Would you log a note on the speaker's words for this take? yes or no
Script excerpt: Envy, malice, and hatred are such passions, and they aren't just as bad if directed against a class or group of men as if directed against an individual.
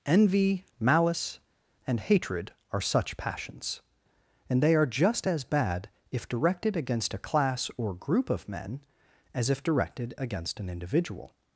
yes